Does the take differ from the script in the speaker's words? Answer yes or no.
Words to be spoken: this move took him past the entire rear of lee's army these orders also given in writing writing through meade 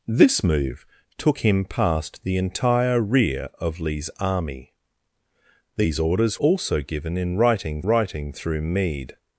no